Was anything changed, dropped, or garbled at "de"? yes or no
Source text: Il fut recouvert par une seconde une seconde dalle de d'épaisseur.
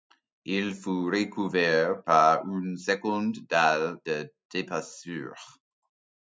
no